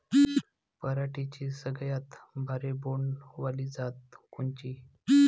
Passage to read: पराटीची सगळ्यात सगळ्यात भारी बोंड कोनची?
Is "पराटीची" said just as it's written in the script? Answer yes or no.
yes